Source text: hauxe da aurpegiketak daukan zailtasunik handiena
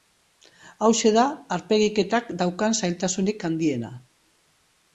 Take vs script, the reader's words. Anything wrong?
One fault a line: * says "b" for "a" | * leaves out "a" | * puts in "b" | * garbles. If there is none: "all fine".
all fine